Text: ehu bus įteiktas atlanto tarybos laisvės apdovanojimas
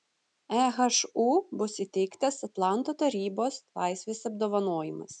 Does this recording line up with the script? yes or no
yes